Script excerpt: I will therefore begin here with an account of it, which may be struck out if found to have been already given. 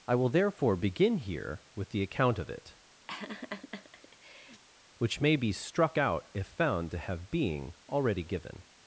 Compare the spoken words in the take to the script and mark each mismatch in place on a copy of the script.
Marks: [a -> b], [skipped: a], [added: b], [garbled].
I will therefore begin here with [an -> the] account of it, which may be struck out if found to have [been -> being] already given.